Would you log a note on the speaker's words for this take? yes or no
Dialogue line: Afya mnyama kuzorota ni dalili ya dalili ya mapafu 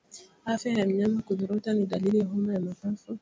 yes